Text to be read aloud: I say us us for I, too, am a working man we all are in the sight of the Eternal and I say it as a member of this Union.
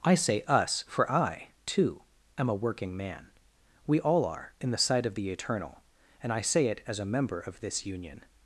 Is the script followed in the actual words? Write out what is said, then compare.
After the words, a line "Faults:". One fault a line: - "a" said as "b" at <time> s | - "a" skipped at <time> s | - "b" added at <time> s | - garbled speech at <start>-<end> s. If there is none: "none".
I say us for I, too, am a working man we all are in the sight of the Eternal and I say it as a member of this Union.
Faults:
- "us" skipped at 0.8 s